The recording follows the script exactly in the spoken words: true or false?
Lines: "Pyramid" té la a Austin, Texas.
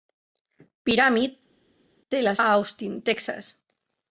true